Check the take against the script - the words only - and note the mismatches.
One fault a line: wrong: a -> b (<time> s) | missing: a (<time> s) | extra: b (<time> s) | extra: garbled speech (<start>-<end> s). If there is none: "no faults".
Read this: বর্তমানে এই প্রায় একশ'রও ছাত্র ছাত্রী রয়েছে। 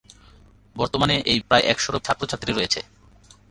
no faults